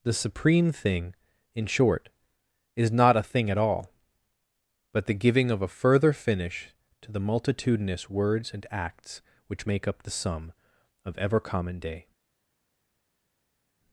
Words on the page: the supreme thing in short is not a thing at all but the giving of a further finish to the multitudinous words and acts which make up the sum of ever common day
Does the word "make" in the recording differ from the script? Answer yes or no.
no